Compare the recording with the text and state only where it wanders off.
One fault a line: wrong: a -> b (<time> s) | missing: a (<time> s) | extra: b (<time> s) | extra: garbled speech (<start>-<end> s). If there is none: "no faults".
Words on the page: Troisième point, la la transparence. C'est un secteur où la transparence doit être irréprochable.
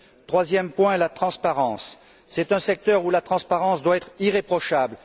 missing: la (1.1 s)